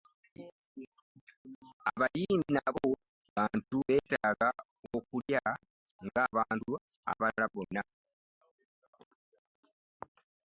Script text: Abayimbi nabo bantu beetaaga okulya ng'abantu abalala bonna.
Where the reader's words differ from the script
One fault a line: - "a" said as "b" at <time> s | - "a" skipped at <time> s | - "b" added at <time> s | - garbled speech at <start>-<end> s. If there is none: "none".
none